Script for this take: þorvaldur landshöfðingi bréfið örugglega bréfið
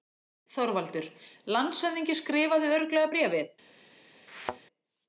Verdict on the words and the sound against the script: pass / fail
fail